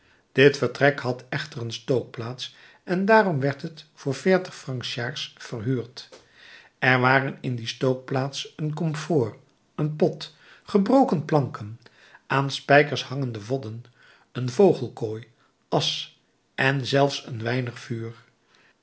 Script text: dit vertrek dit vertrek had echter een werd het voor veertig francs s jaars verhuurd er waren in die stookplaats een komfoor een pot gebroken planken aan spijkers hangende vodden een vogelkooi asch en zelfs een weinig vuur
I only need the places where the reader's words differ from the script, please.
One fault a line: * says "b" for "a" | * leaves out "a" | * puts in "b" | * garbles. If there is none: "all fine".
* leaves out "dit vertrek"
* puts in "stookplaats en daarom"